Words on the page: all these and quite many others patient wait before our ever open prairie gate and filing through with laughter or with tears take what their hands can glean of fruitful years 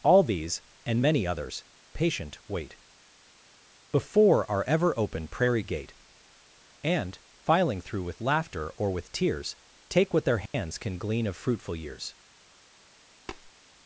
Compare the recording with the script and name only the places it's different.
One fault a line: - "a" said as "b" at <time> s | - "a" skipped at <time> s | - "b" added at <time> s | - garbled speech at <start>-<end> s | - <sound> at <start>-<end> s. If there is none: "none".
- "quite" skipped at 1.0 s
- dropout at 10.5-10.5 s
- tap at 13.3-13.5 s